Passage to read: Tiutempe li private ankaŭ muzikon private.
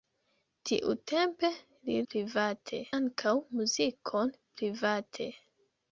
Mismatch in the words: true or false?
false